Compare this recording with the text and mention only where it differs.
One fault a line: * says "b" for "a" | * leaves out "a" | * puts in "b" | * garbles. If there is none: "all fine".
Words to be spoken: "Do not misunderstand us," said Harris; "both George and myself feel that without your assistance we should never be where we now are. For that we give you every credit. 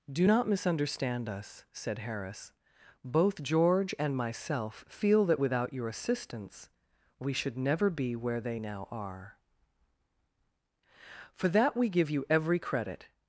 * says "they" for "we"